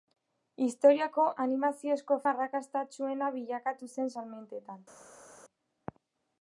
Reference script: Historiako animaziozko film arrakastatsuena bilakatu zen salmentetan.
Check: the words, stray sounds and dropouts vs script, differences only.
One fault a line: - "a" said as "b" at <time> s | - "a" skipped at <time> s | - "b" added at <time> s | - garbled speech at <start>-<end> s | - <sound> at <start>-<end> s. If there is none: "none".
- "film" skipped at 2.2 s